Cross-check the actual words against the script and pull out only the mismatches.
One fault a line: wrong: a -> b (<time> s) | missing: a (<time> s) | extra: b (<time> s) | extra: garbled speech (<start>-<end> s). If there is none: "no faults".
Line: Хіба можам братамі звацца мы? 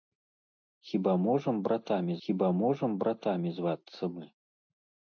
extra: хіба можам братамі (2.3 s)